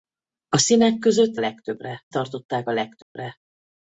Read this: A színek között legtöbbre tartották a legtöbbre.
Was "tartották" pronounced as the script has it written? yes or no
yes